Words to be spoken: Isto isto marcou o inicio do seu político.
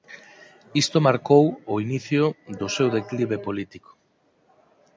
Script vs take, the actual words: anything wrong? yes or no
yes